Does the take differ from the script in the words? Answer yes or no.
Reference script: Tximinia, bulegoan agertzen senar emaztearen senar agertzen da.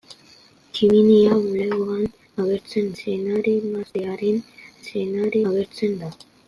no